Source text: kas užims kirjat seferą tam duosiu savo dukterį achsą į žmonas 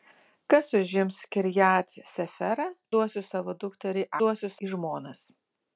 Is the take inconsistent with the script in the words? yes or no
yes